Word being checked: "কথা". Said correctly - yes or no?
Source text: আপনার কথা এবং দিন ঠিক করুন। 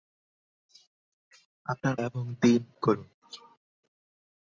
no